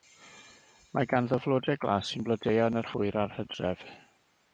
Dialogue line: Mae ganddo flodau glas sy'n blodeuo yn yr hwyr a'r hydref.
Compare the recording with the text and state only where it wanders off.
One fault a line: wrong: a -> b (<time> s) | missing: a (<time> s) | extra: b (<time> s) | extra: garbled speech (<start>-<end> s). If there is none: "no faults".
no faults